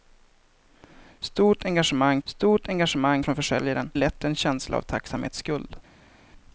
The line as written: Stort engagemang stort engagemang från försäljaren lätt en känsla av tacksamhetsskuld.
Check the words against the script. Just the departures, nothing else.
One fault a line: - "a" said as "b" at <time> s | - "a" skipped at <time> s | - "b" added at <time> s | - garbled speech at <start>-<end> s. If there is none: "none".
none